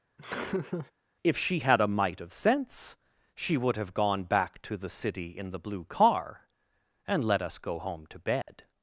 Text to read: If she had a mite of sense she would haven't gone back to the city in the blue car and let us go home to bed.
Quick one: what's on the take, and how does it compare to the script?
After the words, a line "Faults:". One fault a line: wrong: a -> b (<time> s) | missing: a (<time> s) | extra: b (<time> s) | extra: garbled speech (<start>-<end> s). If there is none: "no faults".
If she had a mite of sense she would have gone back to the city in the blue car and let us go home to bed.
Faults:
wrong: haven't -> have (3.7 s)